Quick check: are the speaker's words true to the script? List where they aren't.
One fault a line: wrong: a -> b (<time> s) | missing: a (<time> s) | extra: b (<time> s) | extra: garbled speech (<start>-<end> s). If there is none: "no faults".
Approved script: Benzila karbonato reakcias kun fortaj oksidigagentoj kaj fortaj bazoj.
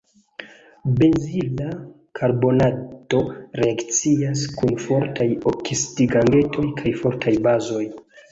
no faults